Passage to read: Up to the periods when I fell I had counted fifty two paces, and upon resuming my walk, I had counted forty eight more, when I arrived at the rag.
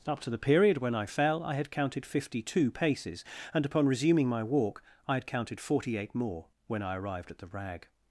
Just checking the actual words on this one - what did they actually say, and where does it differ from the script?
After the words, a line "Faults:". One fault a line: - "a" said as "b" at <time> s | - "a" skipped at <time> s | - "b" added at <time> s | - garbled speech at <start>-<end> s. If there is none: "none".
Up to the period when I fell I had counted fifty two paces, and upon resuming my walk, I had counted forty eight more, when I arrived at the rag.
Faults:
- "periods" said as "period" at 0.4 s